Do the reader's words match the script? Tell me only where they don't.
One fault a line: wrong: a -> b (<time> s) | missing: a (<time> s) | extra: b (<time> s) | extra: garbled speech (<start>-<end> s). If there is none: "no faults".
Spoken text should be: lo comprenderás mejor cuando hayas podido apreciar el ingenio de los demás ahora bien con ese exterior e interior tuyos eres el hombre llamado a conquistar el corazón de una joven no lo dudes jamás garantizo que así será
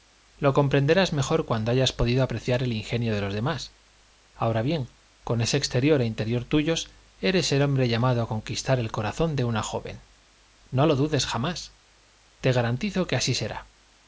extra: te (12.4 s)